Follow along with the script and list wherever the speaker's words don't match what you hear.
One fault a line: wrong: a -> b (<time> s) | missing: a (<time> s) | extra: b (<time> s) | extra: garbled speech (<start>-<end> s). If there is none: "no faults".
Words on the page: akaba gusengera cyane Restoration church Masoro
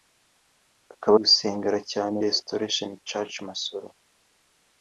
no faults